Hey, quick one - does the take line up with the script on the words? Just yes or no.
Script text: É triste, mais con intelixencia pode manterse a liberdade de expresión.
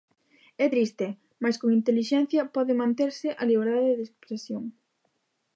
yes